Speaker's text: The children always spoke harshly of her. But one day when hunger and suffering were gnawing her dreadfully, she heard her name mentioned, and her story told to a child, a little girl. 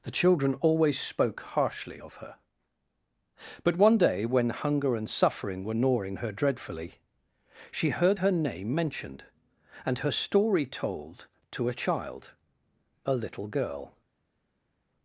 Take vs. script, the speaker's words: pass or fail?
pass